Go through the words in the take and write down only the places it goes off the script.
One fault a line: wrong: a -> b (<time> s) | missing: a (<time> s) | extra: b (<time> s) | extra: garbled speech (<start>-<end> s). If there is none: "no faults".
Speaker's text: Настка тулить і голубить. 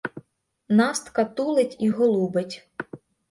no faults